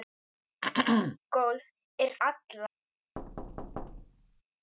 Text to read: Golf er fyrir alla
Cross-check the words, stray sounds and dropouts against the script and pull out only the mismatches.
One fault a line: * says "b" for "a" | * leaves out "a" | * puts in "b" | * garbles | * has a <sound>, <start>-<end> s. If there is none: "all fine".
* has a throat clearing, 0.6-1.2 s
* leaves out "fyrir"
* has a thud, 3.2-4.4 s